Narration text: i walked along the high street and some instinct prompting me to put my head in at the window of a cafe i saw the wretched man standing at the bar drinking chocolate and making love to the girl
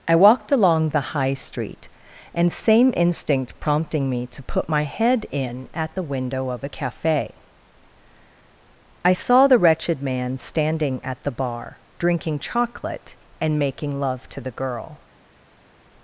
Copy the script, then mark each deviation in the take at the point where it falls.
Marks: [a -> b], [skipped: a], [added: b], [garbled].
i walked along the high street and [some -> same] instinct prompting me to put my head in at the window of a cafe i saw the wretched man standing at the bar drinking chocolate and making love to the girl